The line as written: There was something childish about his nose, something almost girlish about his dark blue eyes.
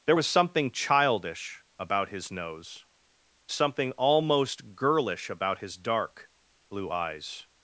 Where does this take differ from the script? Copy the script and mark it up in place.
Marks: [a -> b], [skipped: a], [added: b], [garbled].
There was something childish about his nose, something almost girlish about his dark blue eyes.